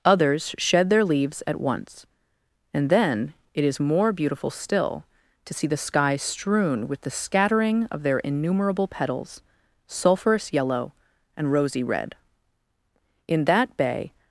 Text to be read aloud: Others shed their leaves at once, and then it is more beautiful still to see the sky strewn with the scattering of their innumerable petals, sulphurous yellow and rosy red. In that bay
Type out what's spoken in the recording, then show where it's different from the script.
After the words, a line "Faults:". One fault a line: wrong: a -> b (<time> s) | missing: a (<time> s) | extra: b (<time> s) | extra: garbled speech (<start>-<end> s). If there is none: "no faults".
Others shed their leaves at once, and then it is more beautiful still to see the sky strewn with the scattering of their innumerable petals, sulphurous yellow and rosy red. In that bay
Faults:
no faults